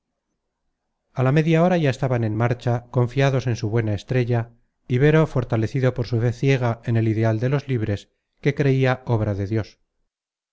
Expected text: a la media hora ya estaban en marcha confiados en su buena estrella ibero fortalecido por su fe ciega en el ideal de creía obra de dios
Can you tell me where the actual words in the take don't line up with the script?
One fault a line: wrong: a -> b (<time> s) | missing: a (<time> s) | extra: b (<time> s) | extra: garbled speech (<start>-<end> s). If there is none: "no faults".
extra: los libres que (7.5 s)